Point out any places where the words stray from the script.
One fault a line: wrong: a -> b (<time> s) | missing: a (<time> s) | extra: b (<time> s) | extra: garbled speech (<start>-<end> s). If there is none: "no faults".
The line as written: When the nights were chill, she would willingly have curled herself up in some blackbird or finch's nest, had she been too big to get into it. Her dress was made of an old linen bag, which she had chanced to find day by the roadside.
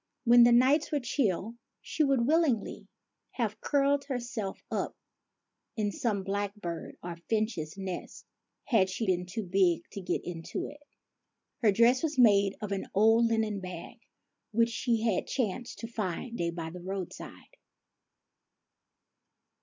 no faults